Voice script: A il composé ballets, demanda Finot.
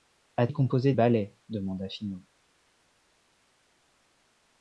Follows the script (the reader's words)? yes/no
yes